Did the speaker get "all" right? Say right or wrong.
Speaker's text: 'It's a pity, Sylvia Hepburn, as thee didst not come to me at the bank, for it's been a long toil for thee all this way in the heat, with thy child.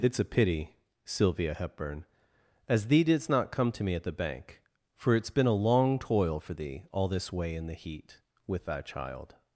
right